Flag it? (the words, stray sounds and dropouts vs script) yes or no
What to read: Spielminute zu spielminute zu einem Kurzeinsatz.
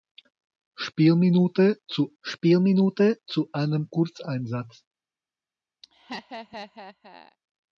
yes